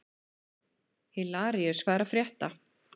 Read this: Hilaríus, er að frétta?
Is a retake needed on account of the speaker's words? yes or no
yes